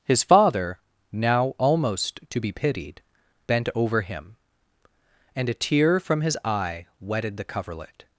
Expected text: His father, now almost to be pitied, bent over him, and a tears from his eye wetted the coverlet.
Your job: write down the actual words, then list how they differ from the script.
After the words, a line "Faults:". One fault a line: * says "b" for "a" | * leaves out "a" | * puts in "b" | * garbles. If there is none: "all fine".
His father, now almost to be pitied, bent over him, and a tear from his eye wetted the coverlet.
Faults:
* says "tear" for "tears"